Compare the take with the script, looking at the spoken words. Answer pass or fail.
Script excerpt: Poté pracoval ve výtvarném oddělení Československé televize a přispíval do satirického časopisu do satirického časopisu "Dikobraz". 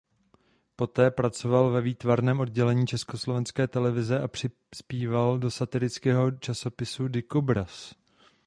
fail